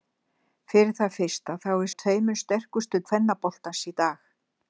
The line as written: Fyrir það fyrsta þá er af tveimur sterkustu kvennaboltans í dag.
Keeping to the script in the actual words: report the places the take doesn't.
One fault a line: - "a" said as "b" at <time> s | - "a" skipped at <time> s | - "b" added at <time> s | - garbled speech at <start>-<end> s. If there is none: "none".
none